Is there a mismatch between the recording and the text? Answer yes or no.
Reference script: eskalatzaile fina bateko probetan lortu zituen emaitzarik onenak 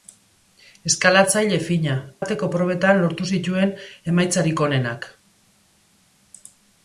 no